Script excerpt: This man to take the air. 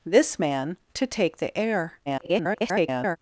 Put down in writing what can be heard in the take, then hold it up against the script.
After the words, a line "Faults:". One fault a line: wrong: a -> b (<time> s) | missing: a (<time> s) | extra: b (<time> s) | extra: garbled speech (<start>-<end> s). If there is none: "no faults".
This man to take the air. [garbled]
Faults:
extra: garbled speech (2.1-3.2 s)